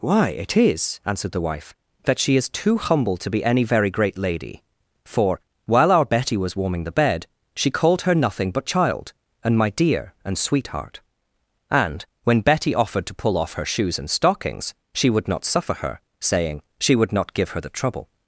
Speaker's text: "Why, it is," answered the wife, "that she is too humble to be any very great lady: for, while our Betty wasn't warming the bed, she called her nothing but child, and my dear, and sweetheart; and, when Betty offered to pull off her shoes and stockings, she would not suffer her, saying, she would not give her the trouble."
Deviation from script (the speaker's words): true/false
true